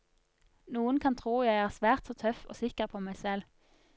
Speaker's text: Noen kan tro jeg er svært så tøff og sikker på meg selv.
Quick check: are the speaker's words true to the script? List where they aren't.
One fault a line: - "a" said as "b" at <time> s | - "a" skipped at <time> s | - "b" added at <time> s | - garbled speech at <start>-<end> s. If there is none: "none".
none